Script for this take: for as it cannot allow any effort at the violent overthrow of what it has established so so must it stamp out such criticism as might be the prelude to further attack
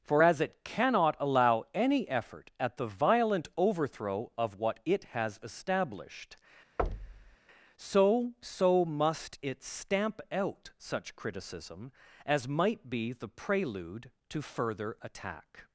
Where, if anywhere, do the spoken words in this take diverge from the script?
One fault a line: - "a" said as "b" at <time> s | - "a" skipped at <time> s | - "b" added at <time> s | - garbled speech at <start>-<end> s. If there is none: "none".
none